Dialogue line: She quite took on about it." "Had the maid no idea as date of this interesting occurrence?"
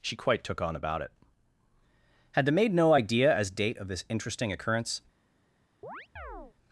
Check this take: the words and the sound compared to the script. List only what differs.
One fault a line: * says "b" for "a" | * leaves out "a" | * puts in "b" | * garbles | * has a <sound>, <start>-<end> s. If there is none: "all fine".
* has a chirp, 5.8-6.5 s